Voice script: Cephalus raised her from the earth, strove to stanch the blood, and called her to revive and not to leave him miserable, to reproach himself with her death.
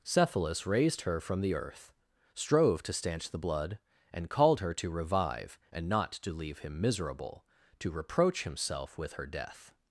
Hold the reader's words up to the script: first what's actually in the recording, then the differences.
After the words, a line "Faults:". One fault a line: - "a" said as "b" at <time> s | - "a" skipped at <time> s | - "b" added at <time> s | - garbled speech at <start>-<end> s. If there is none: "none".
Cephalus raised her from the earth, strove to stanch the blood, and called her to revive and not to leave him miserable, to reproach himself with her death.
Faults:
none